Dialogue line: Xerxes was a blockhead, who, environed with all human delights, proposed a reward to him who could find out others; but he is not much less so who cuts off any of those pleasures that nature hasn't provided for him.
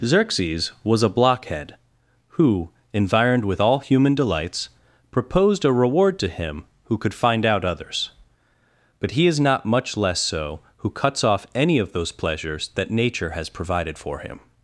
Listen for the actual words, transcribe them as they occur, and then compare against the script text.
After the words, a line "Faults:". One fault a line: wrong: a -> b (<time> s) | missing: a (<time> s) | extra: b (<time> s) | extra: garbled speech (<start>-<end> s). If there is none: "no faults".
Xerxes was a blockhead, who, environed with all human delights, proposed a reward to him who could find out others; but he is not much less so who cuts off any of those pleasures that nature has provided for him.
Faults:
wrong: hasn't -> has (13.3 s)